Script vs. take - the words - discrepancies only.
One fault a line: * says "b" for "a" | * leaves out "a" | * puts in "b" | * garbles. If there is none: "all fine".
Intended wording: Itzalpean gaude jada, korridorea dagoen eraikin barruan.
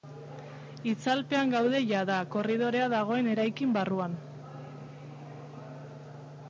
all fine